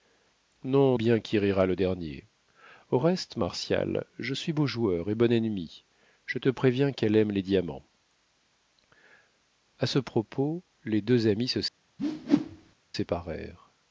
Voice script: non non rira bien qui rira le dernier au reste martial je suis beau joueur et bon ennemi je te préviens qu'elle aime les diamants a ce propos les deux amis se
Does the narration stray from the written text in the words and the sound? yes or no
yes